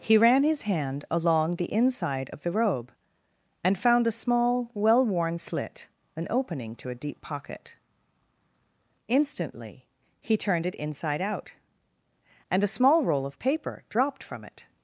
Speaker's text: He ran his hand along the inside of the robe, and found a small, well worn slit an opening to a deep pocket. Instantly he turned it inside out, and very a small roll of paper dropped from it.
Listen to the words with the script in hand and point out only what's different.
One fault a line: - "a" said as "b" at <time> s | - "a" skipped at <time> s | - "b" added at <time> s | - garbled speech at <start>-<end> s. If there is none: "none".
- "very" skipped at 12.6 s